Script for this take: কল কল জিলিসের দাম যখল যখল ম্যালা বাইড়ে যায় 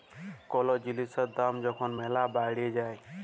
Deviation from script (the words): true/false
true